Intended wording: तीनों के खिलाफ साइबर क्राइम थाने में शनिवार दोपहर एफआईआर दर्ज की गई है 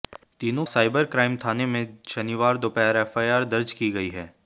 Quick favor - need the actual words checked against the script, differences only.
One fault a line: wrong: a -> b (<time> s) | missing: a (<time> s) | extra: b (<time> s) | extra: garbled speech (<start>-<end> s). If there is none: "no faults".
missing: के खिलाफ (0.7 s)